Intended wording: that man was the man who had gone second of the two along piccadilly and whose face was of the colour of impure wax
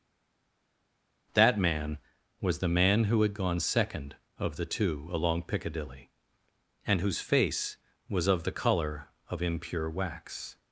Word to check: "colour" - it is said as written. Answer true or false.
true